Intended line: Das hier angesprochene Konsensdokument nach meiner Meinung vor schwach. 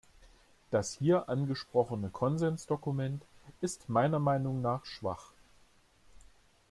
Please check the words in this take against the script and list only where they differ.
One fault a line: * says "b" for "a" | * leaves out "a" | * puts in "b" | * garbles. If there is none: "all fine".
* says "ist" for "nach"
* says "nach" for "vor"